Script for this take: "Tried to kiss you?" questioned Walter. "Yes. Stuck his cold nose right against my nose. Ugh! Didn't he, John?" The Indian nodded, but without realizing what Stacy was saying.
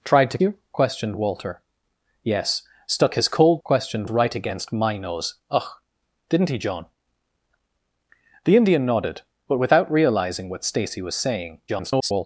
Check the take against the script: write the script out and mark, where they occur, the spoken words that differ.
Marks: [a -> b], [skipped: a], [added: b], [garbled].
"Tried to [skipped: kiss] you?" questioned Walter. "Yes. Stuck his cold [nose -> questioned] right against my nose. Ugh! Didn't he, John?" The Indian nodded, but without realizing what Stacy was saying. [garbled]